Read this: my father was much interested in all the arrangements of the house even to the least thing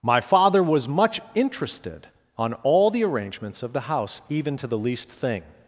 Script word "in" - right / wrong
wrong